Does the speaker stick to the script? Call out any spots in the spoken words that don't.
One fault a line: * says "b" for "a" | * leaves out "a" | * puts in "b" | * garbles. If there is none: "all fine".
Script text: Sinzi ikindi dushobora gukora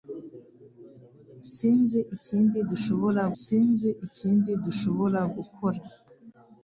* puts in "sinzi ikindi dushobora"